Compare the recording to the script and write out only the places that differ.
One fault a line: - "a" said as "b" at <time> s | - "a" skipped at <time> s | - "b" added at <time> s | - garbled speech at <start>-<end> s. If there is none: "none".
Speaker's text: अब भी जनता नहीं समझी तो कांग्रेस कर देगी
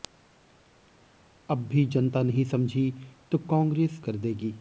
none